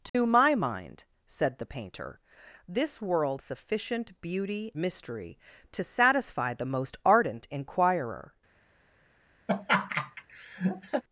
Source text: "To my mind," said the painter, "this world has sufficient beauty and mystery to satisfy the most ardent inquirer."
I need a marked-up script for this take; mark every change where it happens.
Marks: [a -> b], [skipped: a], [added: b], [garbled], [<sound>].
"To [dropout] my mind," said the painter, "this world [skipped: has] sufficient beauty [skipped: and] mystery to satisfy the most ardent inquirer." [laugh]